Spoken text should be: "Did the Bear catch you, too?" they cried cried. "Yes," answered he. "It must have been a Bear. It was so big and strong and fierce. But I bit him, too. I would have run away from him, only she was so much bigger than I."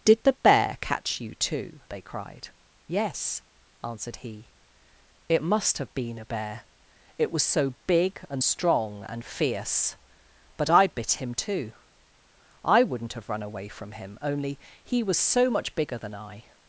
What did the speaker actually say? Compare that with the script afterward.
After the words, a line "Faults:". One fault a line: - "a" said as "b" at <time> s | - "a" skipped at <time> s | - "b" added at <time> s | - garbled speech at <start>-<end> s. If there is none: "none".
"Did the Bear catch you, too?" they cried. "Yes," answered he. "It must have been a Bear. It was so big and strong and fierce. But I bit him, too. I wouldn't have run away from him, only he was so much bigger than I."
Faults:
- "cried" skipped at 2.5 s
- "would" said as "wouldn't" at 12.8 s
- "she" said as "he" at 14.8 s